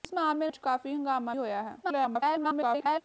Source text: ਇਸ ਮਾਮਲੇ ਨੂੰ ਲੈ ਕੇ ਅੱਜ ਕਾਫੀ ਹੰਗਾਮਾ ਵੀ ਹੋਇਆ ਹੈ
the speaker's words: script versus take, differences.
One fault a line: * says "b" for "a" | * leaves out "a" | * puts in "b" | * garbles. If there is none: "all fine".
* leaves out "ਨੂੰ ਲੈ ਕੇ"
* leaves out "ਵੀ"
* garbles